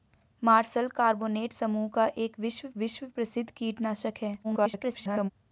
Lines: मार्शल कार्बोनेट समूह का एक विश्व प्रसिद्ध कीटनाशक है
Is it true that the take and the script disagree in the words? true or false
true